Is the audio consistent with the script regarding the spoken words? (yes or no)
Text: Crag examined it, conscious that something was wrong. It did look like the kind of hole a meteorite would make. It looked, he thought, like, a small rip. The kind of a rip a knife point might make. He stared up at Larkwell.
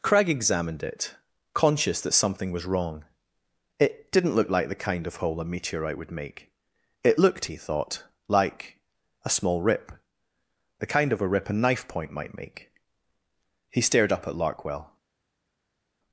no